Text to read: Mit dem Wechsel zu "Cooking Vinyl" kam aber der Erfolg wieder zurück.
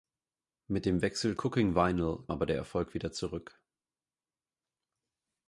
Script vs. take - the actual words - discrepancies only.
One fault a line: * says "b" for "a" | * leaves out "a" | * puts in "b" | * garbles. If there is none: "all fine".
* leaves out "zu"
* leaves out "kam"